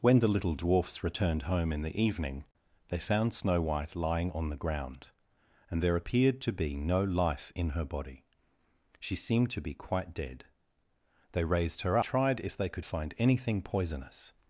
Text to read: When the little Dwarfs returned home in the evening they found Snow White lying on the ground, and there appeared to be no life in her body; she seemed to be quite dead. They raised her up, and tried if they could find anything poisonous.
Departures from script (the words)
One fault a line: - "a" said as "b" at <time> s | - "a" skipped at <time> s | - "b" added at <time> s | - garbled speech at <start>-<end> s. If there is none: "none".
- "up and" skipped at 12.0 s